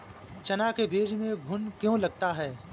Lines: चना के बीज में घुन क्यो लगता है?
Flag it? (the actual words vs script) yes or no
no